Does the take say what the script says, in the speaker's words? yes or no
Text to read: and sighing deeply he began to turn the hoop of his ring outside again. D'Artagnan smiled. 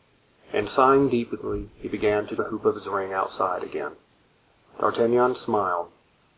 no